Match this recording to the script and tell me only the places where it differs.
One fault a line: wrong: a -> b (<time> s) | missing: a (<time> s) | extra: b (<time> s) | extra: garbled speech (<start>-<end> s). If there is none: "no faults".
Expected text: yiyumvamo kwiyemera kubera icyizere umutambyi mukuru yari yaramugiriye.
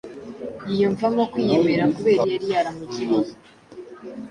missing: icyizere umutambyi mukuru (2.2 s)